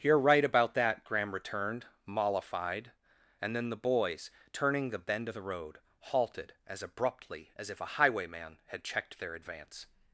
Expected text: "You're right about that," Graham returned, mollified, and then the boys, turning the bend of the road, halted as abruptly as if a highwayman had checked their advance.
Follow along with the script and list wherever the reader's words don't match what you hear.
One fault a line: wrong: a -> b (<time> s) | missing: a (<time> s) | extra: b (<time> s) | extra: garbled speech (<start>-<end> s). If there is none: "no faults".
no faults